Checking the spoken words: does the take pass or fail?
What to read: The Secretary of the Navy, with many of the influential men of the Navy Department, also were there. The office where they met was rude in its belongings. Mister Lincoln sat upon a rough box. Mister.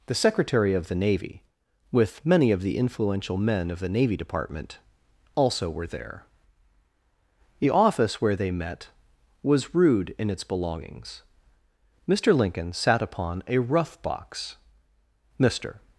pass